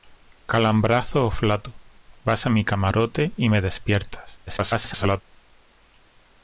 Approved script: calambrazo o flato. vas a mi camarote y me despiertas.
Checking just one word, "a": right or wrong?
right